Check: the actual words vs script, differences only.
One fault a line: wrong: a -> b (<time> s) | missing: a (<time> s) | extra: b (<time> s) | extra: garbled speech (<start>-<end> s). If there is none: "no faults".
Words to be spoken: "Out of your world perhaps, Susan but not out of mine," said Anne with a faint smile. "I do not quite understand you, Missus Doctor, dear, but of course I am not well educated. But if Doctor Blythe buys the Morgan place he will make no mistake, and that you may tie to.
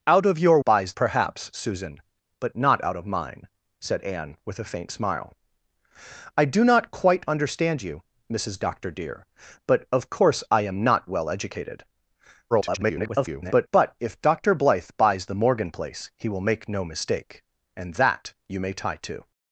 wrong: world -> buys (0.6 s)
extra: garbled speech (12.5-13.7 s)